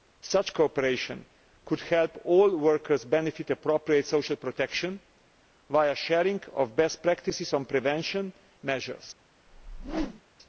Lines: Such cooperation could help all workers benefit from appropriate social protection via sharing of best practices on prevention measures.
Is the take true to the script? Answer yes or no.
yes